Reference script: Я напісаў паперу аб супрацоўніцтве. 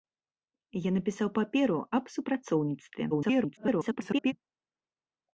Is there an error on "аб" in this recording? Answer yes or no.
no